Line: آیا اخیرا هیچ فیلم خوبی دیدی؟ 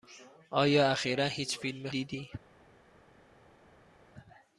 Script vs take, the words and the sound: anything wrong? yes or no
yes